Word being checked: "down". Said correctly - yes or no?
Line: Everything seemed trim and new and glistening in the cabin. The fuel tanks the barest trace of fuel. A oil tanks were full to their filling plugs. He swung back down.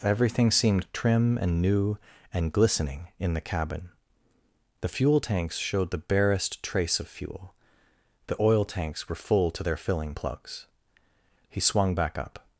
no